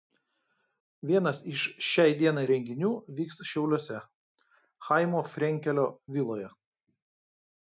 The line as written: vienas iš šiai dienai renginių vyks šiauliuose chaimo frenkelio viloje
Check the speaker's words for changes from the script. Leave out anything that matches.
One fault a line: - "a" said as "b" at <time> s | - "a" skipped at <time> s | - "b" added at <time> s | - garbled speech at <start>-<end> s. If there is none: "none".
none